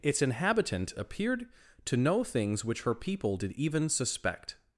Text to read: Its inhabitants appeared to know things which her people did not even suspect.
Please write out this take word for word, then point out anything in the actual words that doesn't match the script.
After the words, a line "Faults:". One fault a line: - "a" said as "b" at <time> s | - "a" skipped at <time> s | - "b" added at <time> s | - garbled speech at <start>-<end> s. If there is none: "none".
Its inhabitant appeared to know things which her people did even suspect.
Faults:
- "inhabitants" said as "inhabitant" at 0.2 s
- "not" skipped at 3.5 s